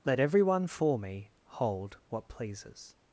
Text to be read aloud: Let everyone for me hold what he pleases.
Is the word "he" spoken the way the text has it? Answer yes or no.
no